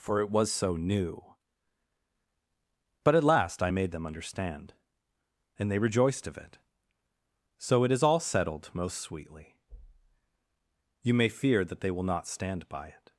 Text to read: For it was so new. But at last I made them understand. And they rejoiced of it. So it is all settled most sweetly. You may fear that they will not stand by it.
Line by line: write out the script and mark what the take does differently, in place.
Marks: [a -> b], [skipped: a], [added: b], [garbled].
For it was so new. But at last I made them understand. And they rejoiced of it. So it is all settled most sweetly. You may fear that they will not stand by it.